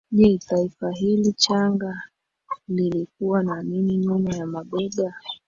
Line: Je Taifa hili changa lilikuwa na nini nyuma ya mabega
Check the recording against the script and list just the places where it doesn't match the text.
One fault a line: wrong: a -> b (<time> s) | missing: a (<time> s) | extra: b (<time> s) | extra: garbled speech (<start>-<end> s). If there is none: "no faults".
no faults